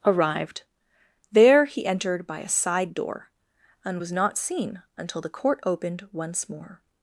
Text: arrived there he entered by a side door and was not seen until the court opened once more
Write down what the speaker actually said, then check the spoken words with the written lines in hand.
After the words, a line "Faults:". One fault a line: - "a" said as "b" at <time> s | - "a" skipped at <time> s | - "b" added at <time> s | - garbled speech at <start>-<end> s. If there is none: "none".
arrived there he entered by a side door and was not seen until the court opened once more
Faults:
none